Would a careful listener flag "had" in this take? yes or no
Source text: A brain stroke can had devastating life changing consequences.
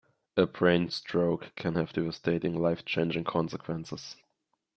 yes